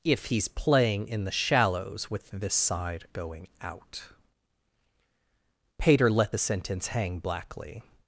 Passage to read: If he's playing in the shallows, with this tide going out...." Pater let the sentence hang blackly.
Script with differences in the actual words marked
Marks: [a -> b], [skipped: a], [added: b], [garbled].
If he's playing in the shallows, with this [tide -> side] going out...." Pater let the sentence hang blackly.